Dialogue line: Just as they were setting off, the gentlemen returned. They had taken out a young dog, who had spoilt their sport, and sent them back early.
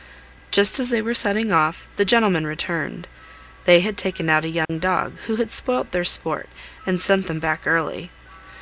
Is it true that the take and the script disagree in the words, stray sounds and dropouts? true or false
true